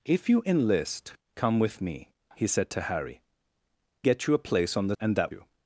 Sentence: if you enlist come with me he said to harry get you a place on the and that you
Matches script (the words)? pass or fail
pass